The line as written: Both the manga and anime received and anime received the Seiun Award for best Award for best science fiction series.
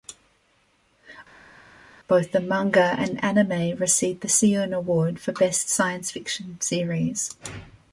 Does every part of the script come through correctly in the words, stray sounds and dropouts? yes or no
no